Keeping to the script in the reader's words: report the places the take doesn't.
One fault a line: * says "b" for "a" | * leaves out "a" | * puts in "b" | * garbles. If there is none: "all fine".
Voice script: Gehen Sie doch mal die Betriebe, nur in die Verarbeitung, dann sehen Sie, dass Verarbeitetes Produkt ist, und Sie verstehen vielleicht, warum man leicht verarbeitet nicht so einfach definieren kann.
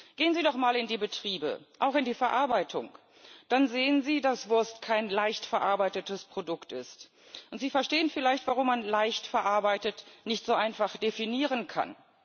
* puts in "in"
* says "auch" for "nur"
* puts in "Wurst kein leicht"